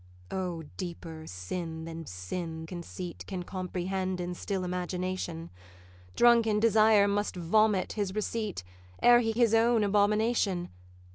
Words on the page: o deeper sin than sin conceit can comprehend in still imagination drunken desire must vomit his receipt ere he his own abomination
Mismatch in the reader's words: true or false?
false